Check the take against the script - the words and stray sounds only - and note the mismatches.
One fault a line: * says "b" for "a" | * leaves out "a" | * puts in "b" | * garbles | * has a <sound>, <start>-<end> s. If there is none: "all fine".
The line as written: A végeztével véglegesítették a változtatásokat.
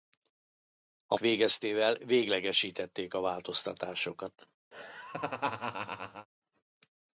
* has a laugh, 4.7-6.3 s